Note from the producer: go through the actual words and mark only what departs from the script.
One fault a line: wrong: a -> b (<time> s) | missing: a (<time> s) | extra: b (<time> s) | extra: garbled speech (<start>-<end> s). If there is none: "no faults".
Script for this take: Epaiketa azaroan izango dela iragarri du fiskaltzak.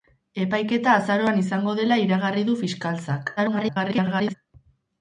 extra: garbled speech (3.4-4.3 s)